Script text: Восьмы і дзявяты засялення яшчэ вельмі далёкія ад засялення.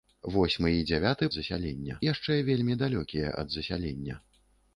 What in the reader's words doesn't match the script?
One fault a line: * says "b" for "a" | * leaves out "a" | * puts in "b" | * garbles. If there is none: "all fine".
all fine